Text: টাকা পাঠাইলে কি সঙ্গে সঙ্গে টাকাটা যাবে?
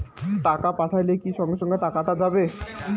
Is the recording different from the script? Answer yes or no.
no